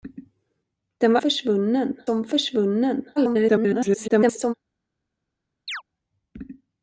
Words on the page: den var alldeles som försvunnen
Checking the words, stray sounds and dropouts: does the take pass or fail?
fail